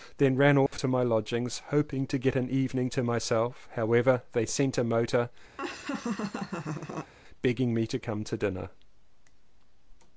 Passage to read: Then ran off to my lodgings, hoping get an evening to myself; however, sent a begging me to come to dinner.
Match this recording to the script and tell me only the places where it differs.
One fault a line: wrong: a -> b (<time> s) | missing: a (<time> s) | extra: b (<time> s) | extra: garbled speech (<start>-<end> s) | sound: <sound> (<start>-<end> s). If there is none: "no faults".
sound: dropout (0.7-0.7 s)
extra: to (2.1 s)
extra: they (4.3 s)
extra: motor (4.8 s)
sound: laugh (5.6-7.1 s)